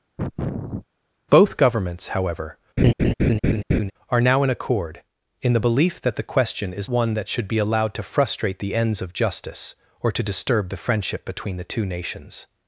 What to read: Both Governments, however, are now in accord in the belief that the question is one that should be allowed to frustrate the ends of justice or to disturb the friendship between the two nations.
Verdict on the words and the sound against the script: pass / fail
fail